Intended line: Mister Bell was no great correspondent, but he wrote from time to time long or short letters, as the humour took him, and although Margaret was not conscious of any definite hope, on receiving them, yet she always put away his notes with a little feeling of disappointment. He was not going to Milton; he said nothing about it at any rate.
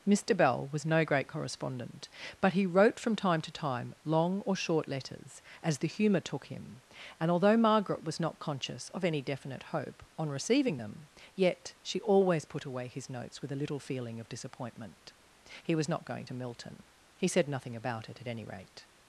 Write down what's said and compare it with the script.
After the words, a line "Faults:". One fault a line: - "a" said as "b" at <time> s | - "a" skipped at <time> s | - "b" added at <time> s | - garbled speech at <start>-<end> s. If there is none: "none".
Mister Bell was no great correspondent, but he wrote from time to time long or short letters, as the humour took him, and although Margaret was not conscious of any definite hope, on receiving them, yet she always put away his notes with a little feeling of disappointment. He was not going to Milton; he said nothing about it at any rate.
Faults:
none